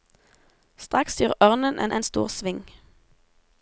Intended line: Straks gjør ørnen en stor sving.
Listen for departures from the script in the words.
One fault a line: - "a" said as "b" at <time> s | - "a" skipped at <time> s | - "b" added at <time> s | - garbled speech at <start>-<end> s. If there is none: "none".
- "en" added at 1.9 s